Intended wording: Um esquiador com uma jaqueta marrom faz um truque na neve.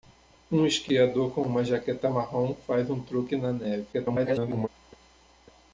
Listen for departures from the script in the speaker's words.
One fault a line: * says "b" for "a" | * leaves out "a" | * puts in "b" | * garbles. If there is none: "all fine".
* garbles